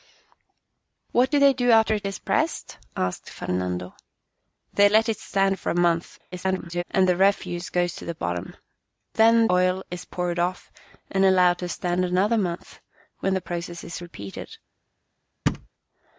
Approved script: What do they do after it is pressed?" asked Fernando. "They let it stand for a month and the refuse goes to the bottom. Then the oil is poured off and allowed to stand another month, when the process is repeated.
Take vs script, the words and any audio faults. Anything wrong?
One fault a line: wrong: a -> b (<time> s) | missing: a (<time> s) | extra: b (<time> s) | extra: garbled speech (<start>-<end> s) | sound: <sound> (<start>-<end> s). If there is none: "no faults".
extra: garbled speech (6.3-6.8 s)
missing: the (9.4 s)
sound: thud (15.5-15.7 s)